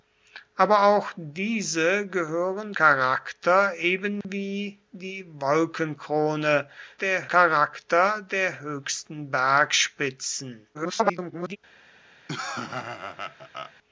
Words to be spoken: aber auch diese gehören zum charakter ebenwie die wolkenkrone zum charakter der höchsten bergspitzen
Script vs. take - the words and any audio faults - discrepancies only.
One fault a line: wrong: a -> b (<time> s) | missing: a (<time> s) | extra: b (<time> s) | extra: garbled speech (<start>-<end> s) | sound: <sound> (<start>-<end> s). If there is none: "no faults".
missing: zum (2.7 s)
sound: dropout (4.2-4.2 s)
wrong: zum -> der (7.0 s)
extra: garbled speech (10.7-11.6 s)
sound: laugh (12.3-13.7 s)